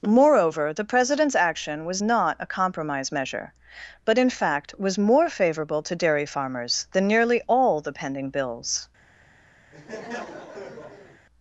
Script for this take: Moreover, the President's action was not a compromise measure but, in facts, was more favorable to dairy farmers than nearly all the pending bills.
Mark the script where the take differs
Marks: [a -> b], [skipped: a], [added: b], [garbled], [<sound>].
Moreover, the President's action was not a compromise measure but, in [facts, -> fact] was more favorable to dairy farmers than nearly all the pending bills. [laugh]